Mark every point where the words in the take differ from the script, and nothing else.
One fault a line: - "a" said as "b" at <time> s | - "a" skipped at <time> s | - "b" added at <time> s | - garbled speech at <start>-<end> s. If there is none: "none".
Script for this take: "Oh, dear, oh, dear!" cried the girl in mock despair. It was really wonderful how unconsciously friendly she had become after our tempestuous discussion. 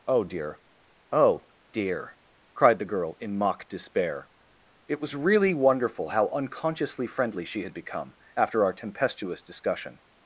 none